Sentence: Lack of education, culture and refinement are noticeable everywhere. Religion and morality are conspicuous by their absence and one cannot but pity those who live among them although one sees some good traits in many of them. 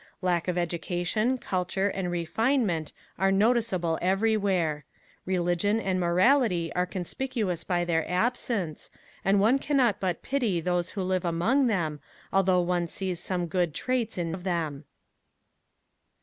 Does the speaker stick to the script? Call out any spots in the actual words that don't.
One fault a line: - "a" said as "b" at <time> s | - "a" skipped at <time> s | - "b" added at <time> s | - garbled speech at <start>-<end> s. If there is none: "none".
- "many" skipped at 14.4 s